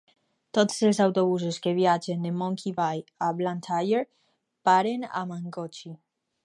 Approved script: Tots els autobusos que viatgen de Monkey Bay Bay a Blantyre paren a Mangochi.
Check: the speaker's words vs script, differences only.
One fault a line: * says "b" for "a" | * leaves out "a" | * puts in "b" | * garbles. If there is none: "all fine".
* leaves out "Bay"